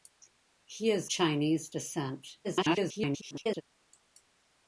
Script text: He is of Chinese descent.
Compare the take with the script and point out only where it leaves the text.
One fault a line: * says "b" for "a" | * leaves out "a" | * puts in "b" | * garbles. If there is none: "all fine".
* leaves out "of"
* garbles